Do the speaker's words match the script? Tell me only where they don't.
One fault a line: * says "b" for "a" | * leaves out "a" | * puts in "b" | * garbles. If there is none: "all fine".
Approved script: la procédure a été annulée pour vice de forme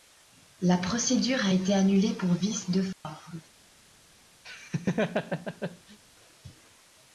all fine